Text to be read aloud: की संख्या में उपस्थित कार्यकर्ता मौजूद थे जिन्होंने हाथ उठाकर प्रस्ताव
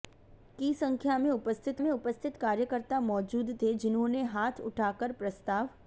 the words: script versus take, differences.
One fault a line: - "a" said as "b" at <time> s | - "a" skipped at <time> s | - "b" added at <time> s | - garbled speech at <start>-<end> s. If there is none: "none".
- "में उपस्थित" added at 1.8 s